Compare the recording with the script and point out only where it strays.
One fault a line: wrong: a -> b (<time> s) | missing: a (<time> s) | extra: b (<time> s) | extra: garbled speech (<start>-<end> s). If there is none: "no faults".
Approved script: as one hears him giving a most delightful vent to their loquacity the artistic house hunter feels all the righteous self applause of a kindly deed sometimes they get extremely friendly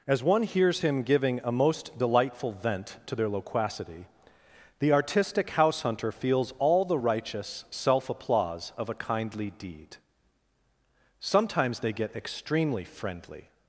no faults